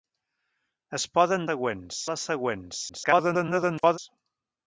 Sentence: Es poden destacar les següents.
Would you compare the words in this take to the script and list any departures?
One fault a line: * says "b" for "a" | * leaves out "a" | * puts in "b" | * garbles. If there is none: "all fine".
* says "següents" for "destacar"
* garbles